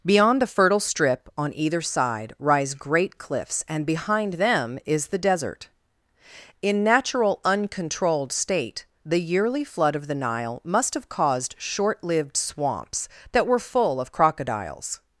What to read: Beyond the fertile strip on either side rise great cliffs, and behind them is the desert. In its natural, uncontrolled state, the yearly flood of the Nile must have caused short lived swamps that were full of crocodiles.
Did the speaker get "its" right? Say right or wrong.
wrong